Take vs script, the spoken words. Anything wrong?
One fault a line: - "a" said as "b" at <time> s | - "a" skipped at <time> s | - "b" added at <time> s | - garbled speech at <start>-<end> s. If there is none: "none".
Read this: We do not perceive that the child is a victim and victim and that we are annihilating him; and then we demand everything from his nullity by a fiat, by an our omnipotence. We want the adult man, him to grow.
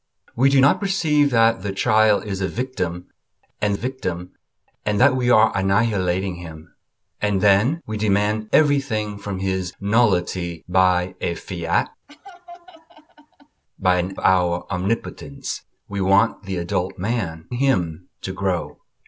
none